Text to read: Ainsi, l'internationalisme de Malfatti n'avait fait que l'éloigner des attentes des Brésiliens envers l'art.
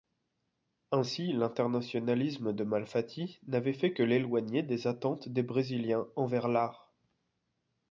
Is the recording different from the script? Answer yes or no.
no